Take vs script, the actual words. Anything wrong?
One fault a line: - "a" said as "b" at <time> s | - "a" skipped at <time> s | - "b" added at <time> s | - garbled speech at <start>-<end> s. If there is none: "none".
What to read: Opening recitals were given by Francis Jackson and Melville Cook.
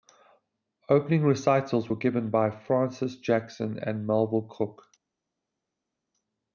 none